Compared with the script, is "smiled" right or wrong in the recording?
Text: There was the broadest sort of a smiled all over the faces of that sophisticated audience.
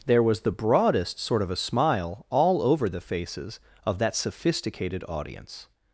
wrong